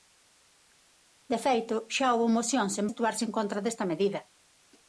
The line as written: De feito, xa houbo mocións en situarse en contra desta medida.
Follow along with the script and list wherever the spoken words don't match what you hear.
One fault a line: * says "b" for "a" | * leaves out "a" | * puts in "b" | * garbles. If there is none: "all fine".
all fine